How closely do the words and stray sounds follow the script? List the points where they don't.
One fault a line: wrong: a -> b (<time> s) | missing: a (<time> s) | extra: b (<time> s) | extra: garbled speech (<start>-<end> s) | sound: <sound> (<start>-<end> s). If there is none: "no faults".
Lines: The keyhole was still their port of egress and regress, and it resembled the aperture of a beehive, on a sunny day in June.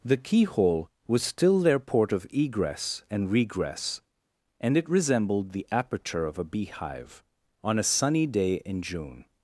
no faults